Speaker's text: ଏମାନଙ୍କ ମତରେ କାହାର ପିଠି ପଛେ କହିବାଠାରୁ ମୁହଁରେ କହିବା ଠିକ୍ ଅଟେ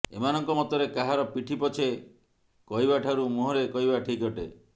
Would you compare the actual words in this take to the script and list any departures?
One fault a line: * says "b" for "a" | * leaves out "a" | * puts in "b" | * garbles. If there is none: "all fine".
all fine